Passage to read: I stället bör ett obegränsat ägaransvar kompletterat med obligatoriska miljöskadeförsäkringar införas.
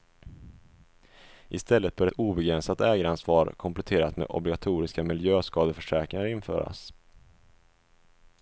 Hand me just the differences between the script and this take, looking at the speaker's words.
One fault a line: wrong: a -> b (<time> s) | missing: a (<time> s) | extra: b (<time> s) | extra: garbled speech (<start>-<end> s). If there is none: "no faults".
missing: ett (2.1 s)